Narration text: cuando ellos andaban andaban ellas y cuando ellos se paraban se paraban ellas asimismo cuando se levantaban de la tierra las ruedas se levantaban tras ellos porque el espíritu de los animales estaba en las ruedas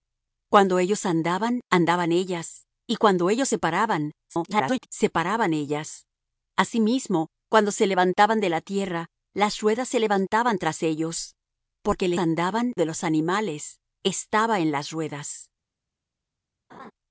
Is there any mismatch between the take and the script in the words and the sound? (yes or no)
yes